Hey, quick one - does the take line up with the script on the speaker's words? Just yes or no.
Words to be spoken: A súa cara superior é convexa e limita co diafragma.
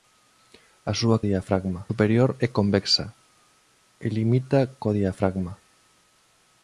no